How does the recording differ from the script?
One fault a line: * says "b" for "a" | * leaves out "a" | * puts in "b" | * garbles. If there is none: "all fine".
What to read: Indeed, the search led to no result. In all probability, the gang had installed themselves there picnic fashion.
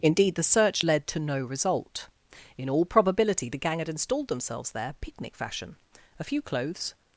* puts in "A few clothes"